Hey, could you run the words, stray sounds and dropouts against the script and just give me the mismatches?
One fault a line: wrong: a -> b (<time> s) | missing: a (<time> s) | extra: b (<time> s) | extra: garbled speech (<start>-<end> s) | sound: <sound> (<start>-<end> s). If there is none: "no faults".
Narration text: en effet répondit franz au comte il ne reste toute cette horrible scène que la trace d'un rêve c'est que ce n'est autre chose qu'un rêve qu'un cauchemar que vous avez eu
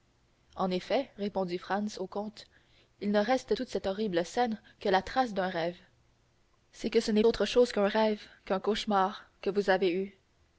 no faults